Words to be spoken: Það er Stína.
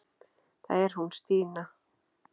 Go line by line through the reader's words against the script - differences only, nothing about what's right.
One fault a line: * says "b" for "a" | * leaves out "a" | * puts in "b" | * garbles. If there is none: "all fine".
* puts in "hún"